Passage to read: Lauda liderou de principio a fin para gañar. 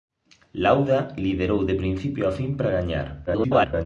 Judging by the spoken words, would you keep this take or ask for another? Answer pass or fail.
fail